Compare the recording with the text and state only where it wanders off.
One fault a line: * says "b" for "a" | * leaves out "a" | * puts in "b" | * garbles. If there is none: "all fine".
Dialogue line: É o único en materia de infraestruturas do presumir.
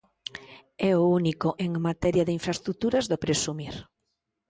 all fine